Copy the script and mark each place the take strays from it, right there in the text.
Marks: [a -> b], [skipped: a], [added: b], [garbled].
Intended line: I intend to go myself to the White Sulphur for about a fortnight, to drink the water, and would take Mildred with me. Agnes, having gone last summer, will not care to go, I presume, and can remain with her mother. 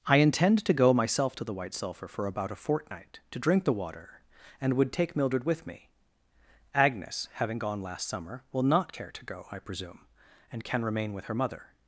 I intend to go myself to the White Sulphur for about a fortnight, to drink the water, and would take Mildred with me. Agnes, having gone last summer, will not care to go, I presume, and can remain with her mother.